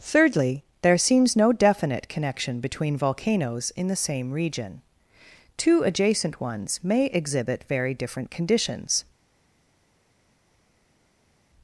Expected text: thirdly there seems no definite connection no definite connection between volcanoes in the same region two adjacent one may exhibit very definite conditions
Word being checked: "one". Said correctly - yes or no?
no